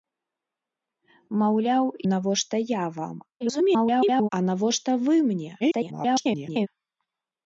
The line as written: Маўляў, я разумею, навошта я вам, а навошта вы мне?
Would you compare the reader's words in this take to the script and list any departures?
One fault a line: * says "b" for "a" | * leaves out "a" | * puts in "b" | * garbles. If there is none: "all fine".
* leaves out "я разумею"
* garbles
* garbles